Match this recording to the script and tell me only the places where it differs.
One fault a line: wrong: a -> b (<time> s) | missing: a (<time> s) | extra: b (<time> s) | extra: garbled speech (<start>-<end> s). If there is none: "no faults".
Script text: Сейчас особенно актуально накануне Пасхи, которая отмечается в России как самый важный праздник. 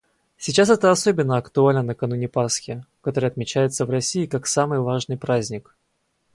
extra: это (0.7 s)